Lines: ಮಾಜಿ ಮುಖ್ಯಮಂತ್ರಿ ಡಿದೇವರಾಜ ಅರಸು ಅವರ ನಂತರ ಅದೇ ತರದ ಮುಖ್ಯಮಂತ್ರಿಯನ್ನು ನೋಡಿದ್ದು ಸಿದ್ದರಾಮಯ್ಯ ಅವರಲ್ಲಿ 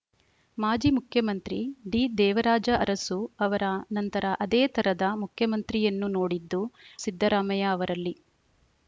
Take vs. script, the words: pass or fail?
pass